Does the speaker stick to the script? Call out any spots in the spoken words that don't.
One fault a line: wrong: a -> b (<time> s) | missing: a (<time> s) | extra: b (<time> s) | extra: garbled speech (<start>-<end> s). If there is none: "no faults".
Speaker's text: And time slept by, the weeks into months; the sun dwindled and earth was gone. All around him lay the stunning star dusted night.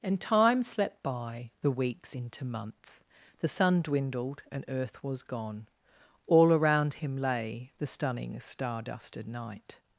no faults